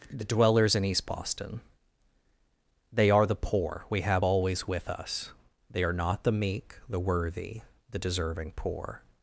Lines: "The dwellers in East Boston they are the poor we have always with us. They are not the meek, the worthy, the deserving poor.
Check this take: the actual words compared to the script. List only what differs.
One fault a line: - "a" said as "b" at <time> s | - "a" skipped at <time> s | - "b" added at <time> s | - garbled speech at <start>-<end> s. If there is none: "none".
none